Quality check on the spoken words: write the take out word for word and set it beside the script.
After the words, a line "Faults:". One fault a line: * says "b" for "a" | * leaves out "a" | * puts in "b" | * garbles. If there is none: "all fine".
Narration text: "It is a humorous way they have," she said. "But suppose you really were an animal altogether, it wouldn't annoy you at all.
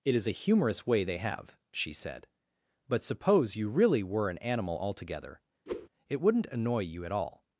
"It is a humorous way they have," she said. "But suppose you really were an animal altogether, it wouldn't annoy you at all.
Faults:
all fine